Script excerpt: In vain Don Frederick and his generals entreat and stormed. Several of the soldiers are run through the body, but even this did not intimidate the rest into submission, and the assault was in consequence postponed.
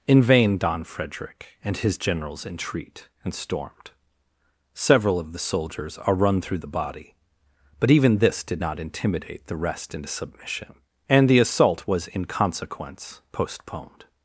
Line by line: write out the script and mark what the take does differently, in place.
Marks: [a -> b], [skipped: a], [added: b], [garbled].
In vain Don Frederick and his generals entreat and stormed. Several of the soldiers are run through the body, but even this did not intimidate the rest into submission, and the assault was in consequence postponed.